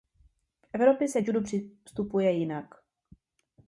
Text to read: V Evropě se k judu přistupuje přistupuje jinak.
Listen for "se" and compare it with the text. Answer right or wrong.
right